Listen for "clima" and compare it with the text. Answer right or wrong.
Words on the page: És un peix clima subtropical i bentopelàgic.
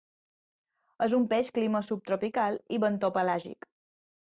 right